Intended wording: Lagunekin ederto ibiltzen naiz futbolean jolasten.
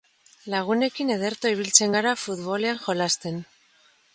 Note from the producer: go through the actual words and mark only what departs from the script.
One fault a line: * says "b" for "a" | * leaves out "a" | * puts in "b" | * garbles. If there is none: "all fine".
* says "gara" for "naiz"